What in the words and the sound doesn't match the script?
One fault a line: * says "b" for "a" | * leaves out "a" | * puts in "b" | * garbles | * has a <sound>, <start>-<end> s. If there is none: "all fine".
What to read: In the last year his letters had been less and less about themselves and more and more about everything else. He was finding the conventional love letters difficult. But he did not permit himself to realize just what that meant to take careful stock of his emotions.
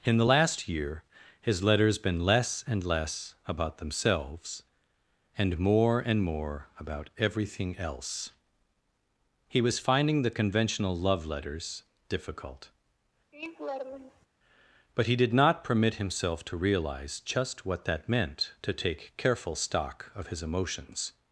* leaves out "had"
* has a laugh, 13.3-14.3 s